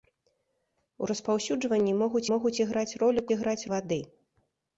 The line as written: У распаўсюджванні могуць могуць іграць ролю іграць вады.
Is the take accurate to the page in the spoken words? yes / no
yes